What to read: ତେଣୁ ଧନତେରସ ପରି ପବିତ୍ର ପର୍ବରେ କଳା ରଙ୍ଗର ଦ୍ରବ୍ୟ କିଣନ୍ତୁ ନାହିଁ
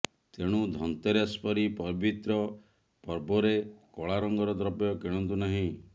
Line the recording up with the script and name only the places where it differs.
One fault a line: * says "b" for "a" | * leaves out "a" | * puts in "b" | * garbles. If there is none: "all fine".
all fine